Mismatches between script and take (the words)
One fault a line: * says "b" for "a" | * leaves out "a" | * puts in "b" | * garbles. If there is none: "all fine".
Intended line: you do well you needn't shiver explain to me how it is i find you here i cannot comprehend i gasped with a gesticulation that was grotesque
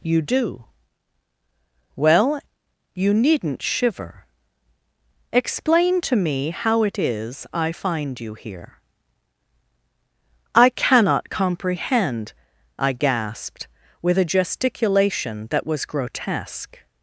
all fine